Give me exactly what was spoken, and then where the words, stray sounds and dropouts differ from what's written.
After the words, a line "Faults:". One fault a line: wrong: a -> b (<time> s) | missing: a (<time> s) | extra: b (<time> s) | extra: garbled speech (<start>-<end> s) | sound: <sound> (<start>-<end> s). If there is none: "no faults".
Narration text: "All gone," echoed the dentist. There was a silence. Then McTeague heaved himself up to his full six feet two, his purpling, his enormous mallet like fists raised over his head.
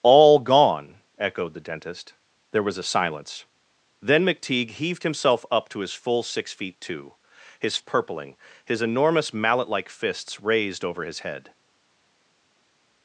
"All gone," echoed the dentist. There was a silence. Then McTeague heaved himself up to his full six feet two, his purpling, his enormous mallet like fists raised over his head.
Faults:
no faults